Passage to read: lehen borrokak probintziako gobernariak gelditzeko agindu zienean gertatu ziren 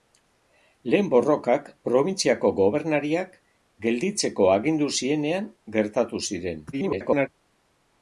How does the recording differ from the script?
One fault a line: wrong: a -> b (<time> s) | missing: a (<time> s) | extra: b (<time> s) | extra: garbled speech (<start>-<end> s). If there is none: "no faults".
extra: garbled speech (6.7-7.3 s)